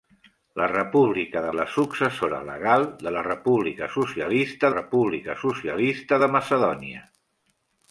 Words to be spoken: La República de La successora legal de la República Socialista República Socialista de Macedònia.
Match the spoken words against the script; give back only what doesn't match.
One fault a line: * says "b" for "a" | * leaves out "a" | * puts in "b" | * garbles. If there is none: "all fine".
all fine